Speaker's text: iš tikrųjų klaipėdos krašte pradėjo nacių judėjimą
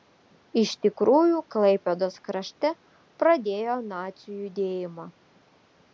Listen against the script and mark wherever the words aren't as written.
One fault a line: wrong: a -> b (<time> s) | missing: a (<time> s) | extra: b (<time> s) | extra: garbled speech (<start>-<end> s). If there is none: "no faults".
no faults